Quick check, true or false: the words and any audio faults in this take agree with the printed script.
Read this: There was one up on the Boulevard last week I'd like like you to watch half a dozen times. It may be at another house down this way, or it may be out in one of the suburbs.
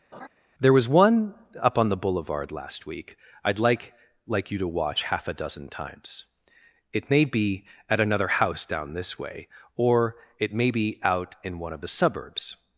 false